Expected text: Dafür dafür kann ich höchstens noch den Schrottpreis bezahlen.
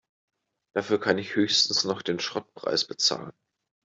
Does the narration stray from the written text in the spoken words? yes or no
yes